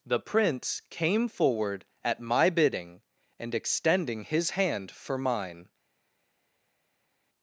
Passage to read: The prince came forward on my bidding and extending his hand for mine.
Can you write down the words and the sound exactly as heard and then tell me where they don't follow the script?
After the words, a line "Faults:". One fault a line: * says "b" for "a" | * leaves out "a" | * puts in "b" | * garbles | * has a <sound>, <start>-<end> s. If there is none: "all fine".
The prince came forward at my bidding and extending his hand for mine.
Faults:
* says "at" for "on"